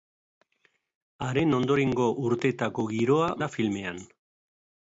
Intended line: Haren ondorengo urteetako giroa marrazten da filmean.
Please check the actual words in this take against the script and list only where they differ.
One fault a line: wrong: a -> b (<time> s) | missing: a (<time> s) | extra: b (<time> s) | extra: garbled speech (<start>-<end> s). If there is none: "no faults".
missing: marrazten (3.3 s)